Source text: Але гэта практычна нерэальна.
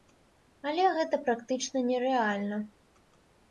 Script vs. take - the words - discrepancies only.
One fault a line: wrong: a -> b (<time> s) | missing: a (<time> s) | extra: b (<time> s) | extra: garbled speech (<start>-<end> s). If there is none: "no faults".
no faults